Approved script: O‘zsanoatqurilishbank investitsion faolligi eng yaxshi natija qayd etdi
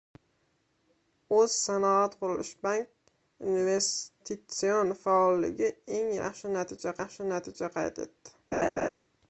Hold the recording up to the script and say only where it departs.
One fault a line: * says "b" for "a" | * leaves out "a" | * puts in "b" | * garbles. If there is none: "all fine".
* puts in "yaxshi natija"